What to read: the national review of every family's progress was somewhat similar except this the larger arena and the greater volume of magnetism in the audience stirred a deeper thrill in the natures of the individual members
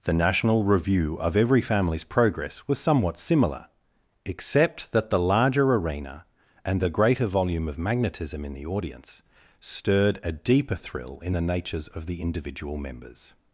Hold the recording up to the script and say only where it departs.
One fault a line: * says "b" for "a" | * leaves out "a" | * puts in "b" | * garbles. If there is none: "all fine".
* says "that" for "this"